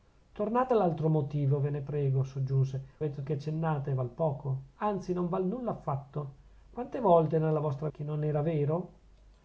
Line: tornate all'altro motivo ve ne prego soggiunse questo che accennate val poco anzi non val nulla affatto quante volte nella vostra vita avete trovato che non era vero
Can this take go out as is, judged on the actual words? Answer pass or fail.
fail